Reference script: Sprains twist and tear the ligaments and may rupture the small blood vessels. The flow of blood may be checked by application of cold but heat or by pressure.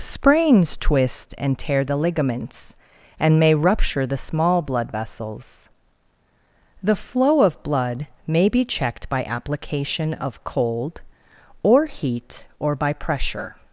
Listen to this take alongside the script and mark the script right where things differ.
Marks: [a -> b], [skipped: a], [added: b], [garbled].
Sprains twist and tear the ligaments and may rupture the small blood vessels. The flow of blood may be checked by application of cold [but -> or] heat or by pressure.